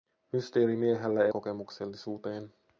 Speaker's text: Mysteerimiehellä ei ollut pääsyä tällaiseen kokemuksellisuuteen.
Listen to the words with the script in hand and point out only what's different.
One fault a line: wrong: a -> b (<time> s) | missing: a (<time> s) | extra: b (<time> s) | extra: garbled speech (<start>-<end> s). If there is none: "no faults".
missing: ollut pääsyä tällaiseen (1.3 s)